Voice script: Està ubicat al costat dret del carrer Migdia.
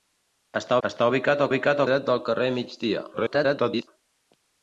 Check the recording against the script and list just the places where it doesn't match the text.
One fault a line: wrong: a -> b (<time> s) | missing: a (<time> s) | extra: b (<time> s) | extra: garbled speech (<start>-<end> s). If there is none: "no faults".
extra: està (0.9 s)
wrong: costat -> ubicat (1.5 s)
extra: garbled speech (3.1-3.9 s)